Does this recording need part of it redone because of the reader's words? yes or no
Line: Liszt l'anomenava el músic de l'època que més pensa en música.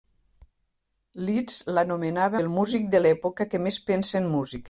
no